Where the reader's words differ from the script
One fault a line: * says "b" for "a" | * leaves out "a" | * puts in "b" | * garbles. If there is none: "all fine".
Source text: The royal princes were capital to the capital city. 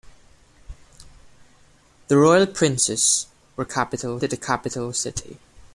all fine